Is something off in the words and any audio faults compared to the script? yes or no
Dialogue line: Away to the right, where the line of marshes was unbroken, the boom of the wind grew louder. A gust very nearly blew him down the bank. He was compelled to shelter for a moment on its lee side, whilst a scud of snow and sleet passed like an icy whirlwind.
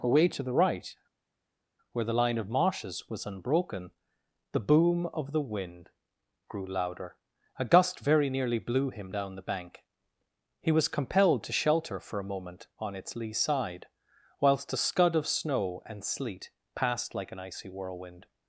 no